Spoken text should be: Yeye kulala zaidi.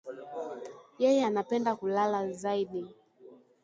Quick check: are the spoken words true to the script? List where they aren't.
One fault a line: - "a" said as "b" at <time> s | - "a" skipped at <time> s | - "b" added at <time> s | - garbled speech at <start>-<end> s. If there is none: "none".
- "anapenda" added at 1.2 s